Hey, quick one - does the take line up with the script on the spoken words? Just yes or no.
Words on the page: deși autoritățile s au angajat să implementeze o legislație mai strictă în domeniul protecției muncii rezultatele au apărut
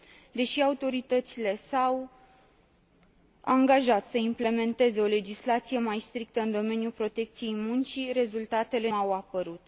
yes